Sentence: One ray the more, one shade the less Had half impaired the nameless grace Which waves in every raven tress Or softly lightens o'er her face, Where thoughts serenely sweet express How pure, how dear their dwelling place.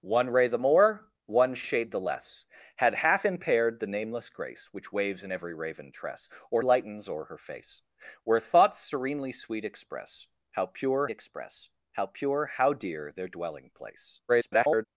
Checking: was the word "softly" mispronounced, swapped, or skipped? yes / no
yes